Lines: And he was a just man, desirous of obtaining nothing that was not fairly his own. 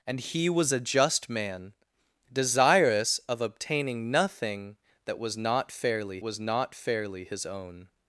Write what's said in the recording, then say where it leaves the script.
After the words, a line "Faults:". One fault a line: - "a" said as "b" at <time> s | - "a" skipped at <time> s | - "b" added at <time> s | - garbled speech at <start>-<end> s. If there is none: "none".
And he was a just man, desirous of obtaining nothing that was not fairly was not fairly his own.
Faults:
- "was not fairly" added at 6.2 s